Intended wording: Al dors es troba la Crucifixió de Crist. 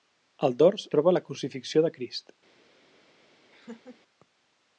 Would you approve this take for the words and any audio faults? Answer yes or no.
no